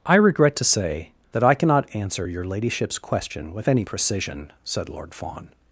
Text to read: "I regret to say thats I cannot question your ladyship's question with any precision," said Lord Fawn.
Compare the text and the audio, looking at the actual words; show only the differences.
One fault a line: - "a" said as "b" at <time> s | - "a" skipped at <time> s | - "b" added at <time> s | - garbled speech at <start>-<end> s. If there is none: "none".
- "thats" said as "that" at 1.3 s
- "question" said as "answer" at 1.9 s